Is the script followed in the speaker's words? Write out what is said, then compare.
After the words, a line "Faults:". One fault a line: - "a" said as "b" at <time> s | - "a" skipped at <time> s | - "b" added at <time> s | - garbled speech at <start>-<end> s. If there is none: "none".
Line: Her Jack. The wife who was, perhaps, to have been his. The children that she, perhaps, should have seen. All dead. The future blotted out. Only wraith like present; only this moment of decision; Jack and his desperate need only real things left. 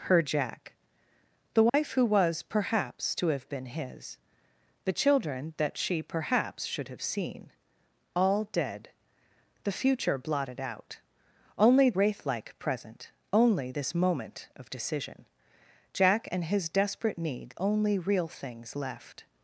Her Jack. The wife who was, perhaps, to have been his. The children that she, perhaps, should have seen. All dead. The future blotted out. Only wraith like present; only this moment of decision; Jack and his desperate need only real things left.
Faults:
none